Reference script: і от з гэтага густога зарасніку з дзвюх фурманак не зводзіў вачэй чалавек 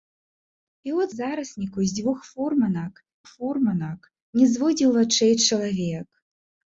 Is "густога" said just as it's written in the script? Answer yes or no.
no